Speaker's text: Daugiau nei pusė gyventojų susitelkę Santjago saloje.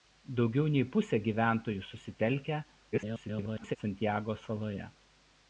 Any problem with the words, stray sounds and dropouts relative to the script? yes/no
yes